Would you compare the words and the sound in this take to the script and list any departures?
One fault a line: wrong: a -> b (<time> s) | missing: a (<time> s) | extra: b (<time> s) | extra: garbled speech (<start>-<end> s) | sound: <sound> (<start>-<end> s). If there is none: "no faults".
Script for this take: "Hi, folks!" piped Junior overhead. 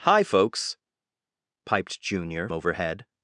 no faults